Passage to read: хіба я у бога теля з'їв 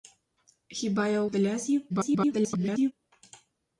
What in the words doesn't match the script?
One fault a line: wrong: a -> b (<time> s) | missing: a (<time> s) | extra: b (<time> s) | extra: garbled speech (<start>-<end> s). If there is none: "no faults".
missing: бога (1.3 s)
extra: garbled speech (1.9-2.9 s)